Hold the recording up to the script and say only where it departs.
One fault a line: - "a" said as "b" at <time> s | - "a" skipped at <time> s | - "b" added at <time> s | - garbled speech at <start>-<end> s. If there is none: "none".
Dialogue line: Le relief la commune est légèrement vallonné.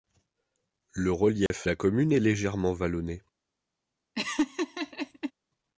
none